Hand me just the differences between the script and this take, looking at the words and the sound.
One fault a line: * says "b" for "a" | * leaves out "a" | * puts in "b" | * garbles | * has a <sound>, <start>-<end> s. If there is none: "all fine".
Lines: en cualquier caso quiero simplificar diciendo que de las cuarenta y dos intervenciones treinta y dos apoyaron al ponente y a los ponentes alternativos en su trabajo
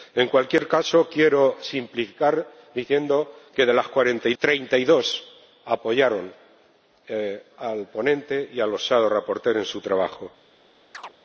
* leaves out "dos intervenciones"
* has a chirp, 10.9-11.1 s